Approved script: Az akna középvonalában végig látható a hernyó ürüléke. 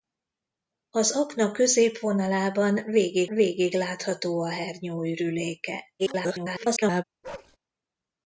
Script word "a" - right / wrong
right